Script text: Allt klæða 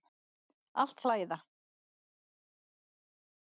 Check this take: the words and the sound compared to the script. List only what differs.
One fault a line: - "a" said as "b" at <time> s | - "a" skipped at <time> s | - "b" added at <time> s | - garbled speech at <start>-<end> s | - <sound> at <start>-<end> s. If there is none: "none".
none